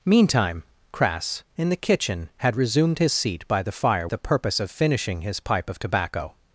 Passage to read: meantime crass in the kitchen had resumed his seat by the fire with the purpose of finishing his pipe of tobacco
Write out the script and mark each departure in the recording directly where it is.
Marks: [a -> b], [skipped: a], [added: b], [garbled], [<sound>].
meantime crass in the kitchen had resumed his seat by the fire [skipped: with] the purpose of finishing his pipe of tobacco